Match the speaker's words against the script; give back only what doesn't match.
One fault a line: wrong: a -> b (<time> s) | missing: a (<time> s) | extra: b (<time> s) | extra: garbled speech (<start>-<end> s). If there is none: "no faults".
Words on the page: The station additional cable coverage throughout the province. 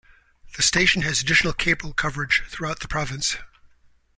extra: has (1.0 s)